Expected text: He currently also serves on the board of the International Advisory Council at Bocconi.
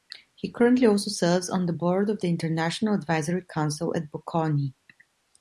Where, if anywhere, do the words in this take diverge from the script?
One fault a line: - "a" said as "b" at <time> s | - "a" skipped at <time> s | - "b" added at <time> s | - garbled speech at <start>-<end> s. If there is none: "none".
none